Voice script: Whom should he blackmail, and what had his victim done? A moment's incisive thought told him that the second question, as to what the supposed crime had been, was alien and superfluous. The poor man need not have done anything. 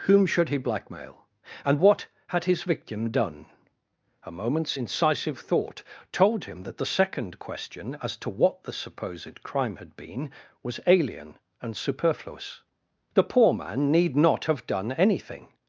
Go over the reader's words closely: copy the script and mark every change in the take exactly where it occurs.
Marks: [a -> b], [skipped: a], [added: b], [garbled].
Whom should he blackmail, and what had his victim done? A moment's incisive thought told him that the second question, as to what the supposed crime had been, was alien and superfluous. The poor man need not have done anything.